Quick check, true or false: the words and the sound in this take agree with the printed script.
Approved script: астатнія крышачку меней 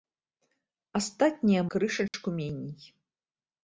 false